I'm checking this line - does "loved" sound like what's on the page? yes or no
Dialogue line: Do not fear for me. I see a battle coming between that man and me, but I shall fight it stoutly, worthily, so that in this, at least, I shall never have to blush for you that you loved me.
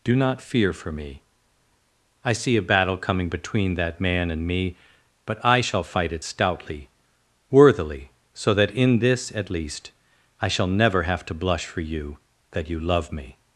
no